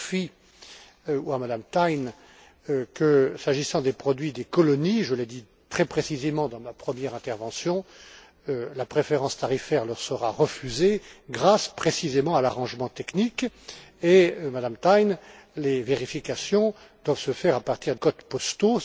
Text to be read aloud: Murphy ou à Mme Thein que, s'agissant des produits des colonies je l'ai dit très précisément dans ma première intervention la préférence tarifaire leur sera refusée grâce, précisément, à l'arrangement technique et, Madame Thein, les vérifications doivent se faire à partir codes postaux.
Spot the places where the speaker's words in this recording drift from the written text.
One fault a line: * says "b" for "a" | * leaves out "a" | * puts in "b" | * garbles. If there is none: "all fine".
all fine